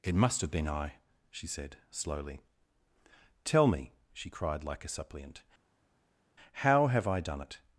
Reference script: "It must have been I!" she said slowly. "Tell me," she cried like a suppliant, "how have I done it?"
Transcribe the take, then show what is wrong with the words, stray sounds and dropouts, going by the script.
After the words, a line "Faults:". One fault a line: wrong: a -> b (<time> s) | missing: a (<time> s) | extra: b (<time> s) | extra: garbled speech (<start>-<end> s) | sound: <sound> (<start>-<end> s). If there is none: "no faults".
"It must have been I!" she said slowly. "Tell me," she cried like a suppliant, "how have I done it?"
Faults:
no faults